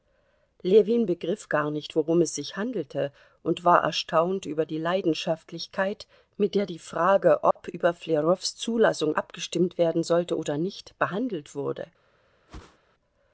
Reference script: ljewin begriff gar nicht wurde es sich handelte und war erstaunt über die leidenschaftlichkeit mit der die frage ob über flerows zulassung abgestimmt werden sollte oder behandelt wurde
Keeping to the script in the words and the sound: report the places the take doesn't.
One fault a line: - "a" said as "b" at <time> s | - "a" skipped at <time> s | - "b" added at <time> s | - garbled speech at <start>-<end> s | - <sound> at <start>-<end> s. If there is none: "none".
- "wurde" said as "worum" at 1.9 s
- dropout at 7.5-7.6 s
- "nicht" added at 10.6 s
- whoosh at 12.5-12.8 s